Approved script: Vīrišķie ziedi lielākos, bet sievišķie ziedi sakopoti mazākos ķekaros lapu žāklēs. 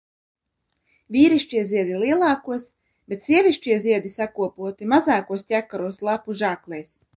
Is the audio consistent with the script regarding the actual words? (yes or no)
yes